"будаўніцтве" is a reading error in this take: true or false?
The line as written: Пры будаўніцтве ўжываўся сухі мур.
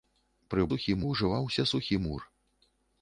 true